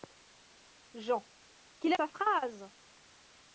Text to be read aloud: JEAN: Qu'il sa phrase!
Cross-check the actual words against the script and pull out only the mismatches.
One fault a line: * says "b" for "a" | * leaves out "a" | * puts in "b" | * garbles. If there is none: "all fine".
all fine